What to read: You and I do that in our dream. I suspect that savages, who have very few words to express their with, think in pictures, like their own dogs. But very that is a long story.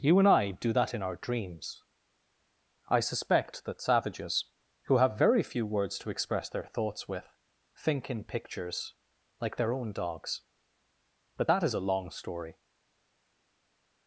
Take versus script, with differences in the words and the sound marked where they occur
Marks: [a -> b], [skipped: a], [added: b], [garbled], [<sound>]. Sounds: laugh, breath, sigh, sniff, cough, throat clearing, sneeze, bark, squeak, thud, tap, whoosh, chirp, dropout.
You and I do that in our [dream. -> dreams] I suspect that savages, who have very few words to express their [added: thoughts] with, think in pictures, like their own dogs. But [skipped: very] that is a long story.